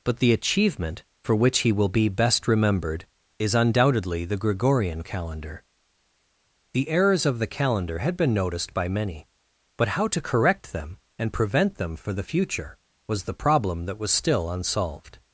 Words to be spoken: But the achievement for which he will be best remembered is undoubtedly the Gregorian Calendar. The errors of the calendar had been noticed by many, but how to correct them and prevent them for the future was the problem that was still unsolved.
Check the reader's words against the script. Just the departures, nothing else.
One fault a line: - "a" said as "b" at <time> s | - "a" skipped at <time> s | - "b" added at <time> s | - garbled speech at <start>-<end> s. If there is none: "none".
none